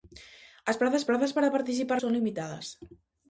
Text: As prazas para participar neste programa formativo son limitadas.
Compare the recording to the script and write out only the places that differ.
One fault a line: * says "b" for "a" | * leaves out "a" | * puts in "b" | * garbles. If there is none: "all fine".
* puts in "prazas"
* leaves out "neste programa formativo"